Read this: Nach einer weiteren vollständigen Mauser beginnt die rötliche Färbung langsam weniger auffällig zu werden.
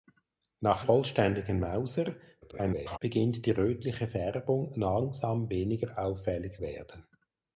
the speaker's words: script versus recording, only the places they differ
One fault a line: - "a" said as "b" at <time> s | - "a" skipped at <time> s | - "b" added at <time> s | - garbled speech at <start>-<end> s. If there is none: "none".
- "einer weiteren" skipped at 0.8 s
- garbled speech at 2.4-3.0 s
- "zu" skipped at 6.6 s